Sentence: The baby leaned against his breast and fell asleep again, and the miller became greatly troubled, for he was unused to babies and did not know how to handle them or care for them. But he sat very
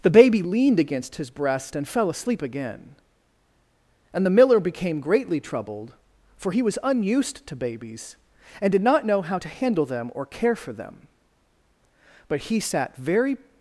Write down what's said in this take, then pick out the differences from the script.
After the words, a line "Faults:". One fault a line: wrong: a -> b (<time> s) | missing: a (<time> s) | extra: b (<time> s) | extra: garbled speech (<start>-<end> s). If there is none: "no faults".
The baby leaned against his breast and fell asleep again, and the miller became greatly troubled, for he was unused to babies and did not know how to handle them or care for them. But he sat very
Faults:
no faults